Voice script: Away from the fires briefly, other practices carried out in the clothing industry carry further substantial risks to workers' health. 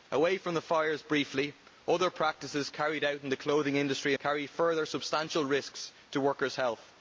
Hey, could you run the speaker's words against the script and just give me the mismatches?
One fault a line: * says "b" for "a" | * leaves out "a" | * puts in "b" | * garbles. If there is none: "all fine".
all fine